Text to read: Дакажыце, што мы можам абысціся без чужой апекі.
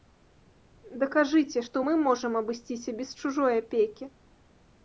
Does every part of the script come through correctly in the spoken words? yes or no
yes